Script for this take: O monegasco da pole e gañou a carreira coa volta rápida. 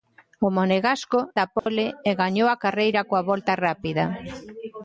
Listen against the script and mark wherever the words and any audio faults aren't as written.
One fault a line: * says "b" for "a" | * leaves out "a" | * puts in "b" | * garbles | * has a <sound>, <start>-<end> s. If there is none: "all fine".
* has a dropout, 1.6-1.7 s